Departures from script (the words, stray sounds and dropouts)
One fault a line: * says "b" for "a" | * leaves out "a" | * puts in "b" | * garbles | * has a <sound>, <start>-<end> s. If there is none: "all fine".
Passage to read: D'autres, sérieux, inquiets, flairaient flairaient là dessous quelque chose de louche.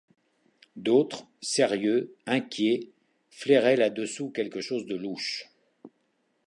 * leaves out "flairaient"